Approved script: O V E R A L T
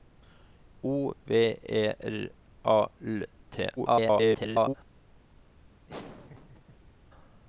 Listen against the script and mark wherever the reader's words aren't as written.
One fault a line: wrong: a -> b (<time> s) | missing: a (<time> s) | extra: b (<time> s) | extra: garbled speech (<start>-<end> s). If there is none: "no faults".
extra: garbled speech (3.8-4.7 s)